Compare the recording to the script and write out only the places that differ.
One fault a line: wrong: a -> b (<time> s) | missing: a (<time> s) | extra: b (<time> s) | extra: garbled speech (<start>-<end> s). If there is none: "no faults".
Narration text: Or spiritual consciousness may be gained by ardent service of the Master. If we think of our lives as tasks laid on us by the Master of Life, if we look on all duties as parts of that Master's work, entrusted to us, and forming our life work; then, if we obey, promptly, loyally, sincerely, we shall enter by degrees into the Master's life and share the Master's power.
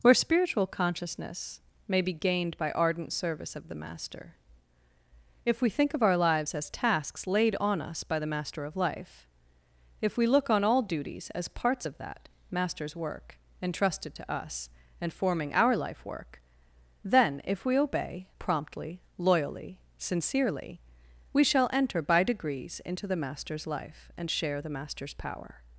wrong: Or -> Where (0.0 s)